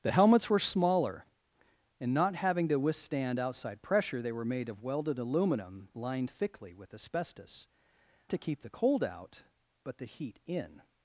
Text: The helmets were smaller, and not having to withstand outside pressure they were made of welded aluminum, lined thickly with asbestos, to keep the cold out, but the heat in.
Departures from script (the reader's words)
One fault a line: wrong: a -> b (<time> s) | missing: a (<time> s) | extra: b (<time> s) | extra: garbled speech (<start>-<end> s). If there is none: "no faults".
no faults